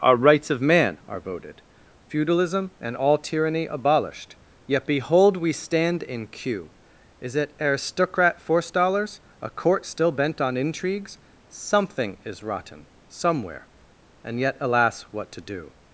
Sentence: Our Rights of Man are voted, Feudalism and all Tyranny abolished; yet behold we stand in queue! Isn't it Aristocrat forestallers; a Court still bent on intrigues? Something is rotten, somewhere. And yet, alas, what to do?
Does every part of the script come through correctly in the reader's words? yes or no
no